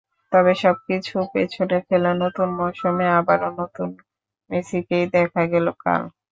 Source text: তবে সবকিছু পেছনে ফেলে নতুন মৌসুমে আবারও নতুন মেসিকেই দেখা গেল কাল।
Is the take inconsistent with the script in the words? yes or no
no